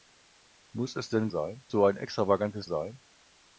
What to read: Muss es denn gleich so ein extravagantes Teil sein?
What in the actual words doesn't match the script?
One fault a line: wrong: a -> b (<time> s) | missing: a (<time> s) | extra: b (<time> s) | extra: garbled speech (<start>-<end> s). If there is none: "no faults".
wrong: gleich -> sein (1.3 s)
missing: Teil (2.7 s)